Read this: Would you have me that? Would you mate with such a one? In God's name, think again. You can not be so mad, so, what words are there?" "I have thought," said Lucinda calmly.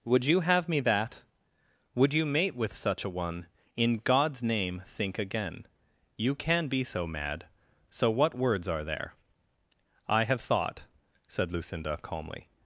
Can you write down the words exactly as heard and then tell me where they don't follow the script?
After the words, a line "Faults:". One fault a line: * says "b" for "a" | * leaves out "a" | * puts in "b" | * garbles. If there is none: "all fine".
Would you have me that? Would you mate with such a one? In God's name, think again. You can be so mad, so, what words are there?" "I have thought," said Lucinda calmly.
Faults:
* leaves out "not"